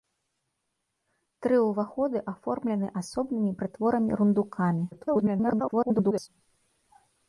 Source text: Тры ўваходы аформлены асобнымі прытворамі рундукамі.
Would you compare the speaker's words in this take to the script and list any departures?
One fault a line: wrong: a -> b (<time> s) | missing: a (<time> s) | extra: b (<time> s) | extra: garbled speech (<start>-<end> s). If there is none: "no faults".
extra: garbled speech (4.9-6.3 s)